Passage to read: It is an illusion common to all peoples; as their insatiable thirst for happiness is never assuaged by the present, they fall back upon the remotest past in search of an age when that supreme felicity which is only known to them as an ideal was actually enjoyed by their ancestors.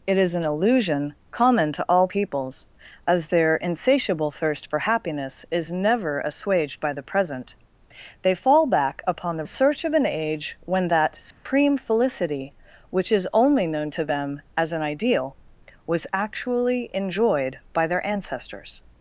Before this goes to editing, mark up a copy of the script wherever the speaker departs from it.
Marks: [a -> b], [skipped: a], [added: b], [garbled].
It is an illusion common to all peoples; as their insatiable thirst for happiness is never assuaged by the present, they fall back upon the [skipped: remotest past in] search of an age when that supreme felicity which is only known to them as an ideal was actually enjoyed by their ancestors.